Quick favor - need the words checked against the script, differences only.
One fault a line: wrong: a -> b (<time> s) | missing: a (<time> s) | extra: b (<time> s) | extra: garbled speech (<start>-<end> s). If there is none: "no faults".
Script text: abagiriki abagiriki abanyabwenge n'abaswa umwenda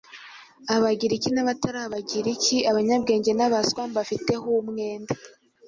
extra: n'abatari (1.3 s)
extra: mbafiteho (3.9 s)